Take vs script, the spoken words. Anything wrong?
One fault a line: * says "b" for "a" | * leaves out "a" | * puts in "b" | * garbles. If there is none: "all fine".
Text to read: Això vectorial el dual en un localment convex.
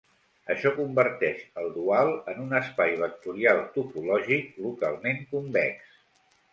* says "converteix" for "vectorial"
* puts in "espai vectorial topològic"